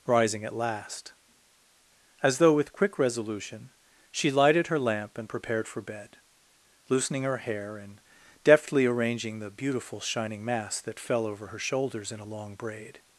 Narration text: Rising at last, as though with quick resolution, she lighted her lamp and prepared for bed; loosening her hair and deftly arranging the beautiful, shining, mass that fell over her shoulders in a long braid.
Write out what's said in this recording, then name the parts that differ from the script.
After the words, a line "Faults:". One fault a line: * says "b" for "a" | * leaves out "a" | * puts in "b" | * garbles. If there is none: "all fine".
Rising at last, as though with quick resolution, she lighted her lamp and prepared for bed; loosening her hair and deftly arranging the beautiful, shining, mass that fell over her shoulders in a long braid.
Faults:
all fine